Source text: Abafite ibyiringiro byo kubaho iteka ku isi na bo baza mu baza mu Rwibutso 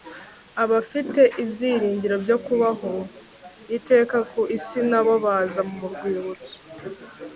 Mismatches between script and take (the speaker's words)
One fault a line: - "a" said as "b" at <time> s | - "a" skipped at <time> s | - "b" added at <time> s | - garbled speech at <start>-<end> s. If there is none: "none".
- "baza mu" skipped at 5.8 s